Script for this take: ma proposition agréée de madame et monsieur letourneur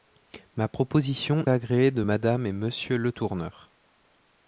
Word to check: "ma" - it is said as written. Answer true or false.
true